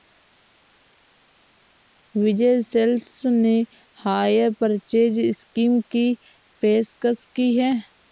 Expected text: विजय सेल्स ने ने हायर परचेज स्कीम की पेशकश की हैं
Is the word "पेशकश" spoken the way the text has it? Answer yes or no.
yes